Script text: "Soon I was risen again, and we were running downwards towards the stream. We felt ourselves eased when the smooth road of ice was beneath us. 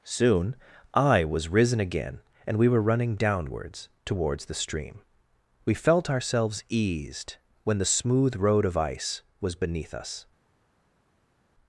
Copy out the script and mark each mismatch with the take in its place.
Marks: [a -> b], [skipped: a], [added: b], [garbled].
"Soon I was risen again, and we were running downwards towards the stream. We felt ourselves eased when the smooth road of ice was beneath us.